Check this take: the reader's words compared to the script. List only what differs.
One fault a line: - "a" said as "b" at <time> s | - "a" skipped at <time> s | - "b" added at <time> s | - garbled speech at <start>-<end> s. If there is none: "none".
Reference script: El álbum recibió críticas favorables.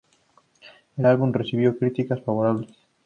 none